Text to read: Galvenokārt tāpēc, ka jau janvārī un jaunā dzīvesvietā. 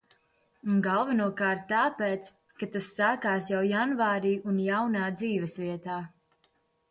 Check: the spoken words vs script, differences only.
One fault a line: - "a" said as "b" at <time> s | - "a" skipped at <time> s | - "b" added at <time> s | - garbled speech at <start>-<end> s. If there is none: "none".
- "tas sākās" added at 2.8 s